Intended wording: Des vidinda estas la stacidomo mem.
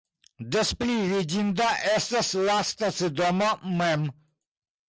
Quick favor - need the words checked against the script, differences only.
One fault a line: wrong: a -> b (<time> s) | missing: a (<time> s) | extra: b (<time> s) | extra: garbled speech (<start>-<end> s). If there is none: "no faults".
extra: pli (0.8 s)